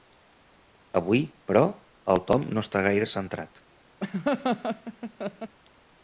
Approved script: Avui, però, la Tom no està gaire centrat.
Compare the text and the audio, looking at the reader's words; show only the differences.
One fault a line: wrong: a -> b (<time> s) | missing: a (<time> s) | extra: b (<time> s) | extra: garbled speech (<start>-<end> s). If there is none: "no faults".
wrong: la -> el (2.1 s)